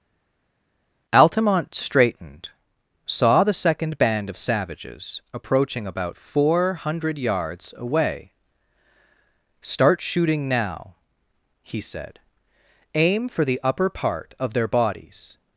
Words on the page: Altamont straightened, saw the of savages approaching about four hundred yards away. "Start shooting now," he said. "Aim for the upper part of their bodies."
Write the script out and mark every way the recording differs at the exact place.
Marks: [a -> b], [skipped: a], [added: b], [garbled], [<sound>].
Altamont straightened, saw the [added: second band] of savages approaching about four hundred yards away. "Start shooting now," he said. "Aim for the upper part of their bodies."